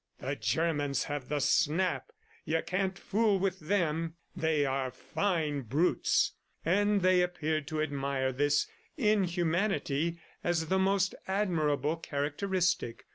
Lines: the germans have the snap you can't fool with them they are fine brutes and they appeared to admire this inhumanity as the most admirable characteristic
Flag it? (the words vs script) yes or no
no